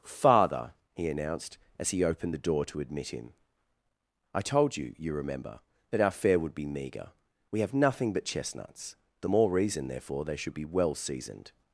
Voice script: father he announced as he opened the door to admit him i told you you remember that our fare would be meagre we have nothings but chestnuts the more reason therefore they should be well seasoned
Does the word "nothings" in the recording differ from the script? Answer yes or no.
yes